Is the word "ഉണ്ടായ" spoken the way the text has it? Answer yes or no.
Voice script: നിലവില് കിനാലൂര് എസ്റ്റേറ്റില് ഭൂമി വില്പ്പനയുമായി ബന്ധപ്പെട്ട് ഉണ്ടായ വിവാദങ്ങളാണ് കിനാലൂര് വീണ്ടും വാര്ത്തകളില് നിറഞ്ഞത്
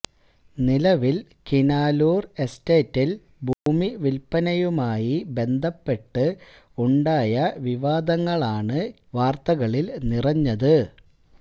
yes